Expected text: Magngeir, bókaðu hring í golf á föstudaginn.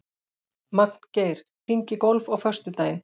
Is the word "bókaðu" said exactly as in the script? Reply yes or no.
no